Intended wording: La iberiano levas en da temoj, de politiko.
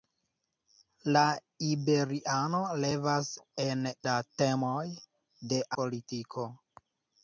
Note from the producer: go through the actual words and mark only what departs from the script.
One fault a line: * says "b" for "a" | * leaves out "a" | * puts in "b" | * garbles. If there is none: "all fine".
all fine